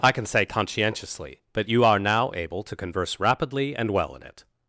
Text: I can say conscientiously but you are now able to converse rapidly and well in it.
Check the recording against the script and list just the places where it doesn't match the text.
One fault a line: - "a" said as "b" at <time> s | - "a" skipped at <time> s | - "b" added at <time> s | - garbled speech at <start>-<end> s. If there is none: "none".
none